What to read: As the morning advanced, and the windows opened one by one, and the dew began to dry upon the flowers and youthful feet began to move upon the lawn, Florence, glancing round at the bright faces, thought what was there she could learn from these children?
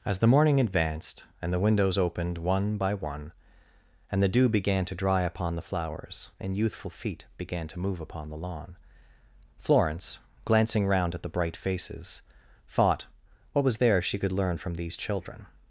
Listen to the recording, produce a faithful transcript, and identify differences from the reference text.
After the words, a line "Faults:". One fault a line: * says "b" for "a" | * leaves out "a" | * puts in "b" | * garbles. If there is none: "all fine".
As the morning advanced, and the windows opened one by one, and the dew began to dry upon the flowers and youthful feet began to move upon the lawn, Florence, glancing round at the bright faces, thought what was there she could learn from these children?
Faults:
all fine